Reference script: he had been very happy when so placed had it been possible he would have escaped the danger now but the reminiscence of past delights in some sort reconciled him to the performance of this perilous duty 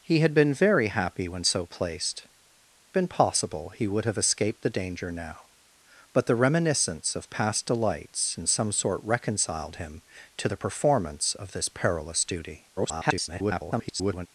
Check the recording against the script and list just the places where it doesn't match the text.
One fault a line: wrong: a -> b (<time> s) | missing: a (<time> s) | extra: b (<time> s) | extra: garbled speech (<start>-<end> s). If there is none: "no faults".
missing: had it (2.2 s)
extra: garbled speech (12.8-14.3 s)